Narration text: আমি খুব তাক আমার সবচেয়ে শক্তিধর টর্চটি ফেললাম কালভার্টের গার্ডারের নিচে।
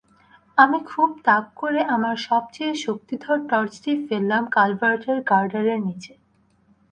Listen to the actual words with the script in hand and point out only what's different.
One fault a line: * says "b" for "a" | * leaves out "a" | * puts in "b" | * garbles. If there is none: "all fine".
* puts in "করে"